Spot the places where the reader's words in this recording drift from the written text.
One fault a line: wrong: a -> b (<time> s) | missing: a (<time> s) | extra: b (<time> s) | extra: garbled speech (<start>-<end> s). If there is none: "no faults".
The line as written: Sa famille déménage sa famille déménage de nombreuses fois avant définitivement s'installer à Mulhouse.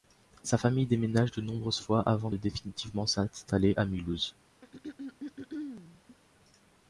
missing: sa famille déménage (1.3 s)
extra: de (2.3 s)